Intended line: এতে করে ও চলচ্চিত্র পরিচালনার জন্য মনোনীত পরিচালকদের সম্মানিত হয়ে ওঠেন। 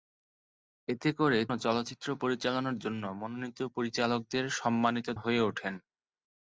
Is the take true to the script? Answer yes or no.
yes